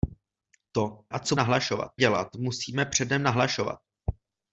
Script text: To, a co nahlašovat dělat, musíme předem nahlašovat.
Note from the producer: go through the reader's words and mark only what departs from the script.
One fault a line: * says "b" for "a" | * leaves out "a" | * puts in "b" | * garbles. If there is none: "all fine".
all fine